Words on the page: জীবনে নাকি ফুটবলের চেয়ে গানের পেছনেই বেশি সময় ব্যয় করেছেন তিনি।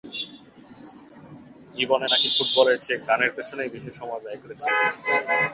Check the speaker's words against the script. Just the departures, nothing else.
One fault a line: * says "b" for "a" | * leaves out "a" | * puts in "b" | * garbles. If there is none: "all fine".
all fine